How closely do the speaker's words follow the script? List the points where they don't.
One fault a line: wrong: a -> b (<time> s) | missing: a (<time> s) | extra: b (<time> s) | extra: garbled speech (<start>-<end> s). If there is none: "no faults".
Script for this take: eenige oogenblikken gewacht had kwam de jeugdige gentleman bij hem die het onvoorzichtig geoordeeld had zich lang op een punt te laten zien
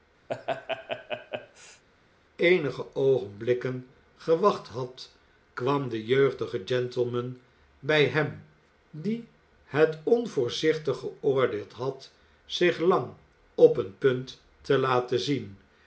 no faults